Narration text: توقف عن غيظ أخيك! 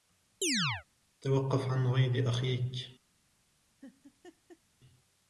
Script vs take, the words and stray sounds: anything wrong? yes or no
yes